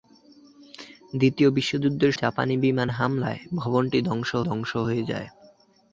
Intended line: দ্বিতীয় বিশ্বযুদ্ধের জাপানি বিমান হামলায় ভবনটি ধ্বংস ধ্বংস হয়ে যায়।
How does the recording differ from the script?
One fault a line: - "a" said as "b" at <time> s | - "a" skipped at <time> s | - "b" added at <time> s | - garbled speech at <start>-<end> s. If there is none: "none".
none